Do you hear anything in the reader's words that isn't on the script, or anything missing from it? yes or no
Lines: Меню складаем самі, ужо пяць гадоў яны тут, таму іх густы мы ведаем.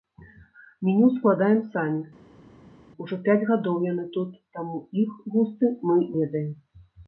no